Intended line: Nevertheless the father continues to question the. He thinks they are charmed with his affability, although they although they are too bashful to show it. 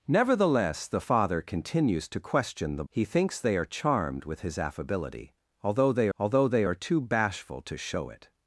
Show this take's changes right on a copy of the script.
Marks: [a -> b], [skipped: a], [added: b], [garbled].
Nevertheless the father continues to question the. He thinks they are charmed with his affability, although they although they are too bashful to show it.